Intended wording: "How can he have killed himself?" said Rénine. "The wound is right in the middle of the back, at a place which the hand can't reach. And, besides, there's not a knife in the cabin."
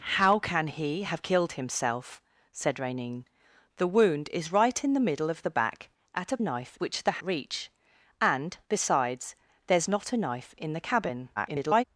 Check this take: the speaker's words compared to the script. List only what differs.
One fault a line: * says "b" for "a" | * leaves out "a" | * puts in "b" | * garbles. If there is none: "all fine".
* says "knife" for "place"
* leaves out "hand can't"
* garbles